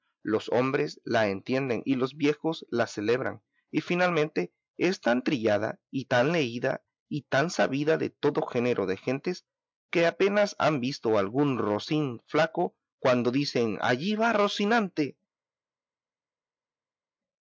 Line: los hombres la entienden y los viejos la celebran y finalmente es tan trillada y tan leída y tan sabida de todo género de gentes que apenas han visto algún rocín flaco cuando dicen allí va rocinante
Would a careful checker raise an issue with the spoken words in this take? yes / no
no